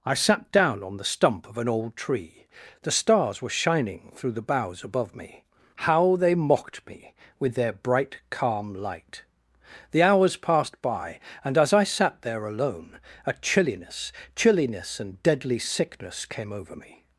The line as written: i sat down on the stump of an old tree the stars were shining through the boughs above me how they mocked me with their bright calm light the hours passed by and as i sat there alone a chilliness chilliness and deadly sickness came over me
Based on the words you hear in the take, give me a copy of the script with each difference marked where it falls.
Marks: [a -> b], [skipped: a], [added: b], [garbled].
i sat down on the stump of an old tree the stars were shining through the boughs above me how they mocked me with their bright calm light the hours passed by and as i sat there alone a chilliness chilliness and deadly sickness came over me